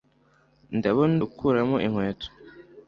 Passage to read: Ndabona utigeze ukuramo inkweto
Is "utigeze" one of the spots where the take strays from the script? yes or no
yes